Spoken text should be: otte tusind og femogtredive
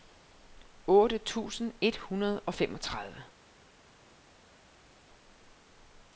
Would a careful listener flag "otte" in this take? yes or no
no